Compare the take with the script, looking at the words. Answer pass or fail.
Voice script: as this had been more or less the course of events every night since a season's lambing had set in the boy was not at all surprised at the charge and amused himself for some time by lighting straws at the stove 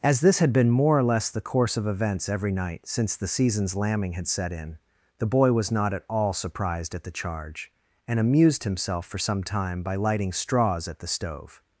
fail